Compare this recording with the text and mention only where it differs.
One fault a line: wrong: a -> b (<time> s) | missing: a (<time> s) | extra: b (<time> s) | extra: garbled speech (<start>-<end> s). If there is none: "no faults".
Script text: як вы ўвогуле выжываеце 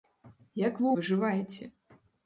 missing: ўвогуле (0.9 s)